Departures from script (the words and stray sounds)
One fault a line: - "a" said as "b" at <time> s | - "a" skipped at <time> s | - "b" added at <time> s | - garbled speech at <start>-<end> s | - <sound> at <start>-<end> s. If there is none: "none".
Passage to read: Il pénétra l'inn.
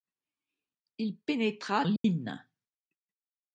- dropout at 2.0-2.0 s